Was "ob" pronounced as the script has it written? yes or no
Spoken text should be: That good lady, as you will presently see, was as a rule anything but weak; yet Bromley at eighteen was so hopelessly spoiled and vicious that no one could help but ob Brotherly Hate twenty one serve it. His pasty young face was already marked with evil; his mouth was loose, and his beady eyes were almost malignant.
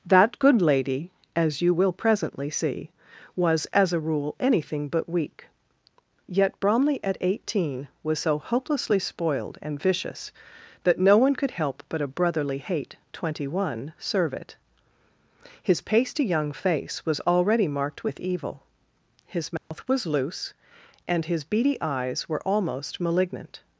no